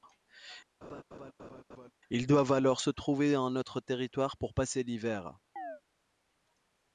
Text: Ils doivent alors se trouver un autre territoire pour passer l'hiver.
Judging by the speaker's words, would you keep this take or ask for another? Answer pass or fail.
pass